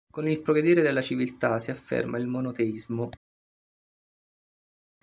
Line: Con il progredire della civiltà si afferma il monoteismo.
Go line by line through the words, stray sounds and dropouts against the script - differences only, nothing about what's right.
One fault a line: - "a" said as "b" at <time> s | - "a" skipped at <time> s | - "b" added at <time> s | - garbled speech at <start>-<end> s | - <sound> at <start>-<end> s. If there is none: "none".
none